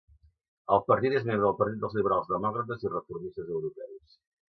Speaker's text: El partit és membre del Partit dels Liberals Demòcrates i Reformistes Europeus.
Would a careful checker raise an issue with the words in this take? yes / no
no